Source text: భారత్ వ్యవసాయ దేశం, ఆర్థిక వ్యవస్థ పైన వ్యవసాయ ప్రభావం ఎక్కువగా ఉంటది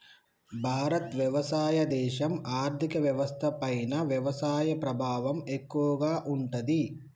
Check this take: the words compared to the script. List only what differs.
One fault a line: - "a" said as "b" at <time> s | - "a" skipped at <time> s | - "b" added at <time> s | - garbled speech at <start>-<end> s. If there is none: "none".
none